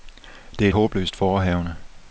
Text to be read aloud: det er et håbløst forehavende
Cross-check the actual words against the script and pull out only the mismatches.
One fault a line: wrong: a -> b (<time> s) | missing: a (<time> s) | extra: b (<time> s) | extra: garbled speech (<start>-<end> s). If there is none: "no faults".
no faults